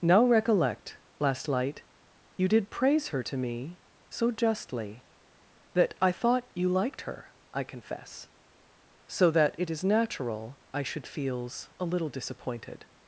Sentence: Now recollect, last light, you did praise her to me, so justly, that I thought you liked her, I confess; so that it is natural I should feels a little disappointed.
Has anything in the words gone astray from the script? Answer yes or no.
no